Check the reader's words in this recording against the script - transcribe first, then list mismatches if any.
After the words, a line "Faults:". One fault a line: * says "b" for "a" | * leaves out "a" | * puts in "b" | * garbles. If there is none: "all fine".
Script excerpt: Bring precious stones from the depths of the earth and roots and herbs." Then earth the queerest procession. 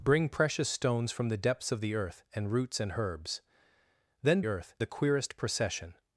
Bring precious stones from the depths of the earth and roots and herbs." Then earth the queerest procession.
Faults:
all fine